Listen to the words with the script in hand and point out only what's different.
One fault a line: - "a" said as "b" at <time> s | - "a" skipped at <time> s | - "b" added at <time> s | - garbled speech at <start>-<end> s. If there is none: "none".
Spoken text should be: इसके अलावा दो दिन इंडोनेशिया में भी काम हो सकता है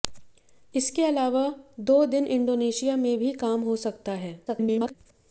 - garbled speech at 4.5-4.9 s